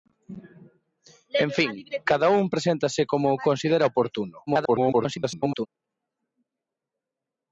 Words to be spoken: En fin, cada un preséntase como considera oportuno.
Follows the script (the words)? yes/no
no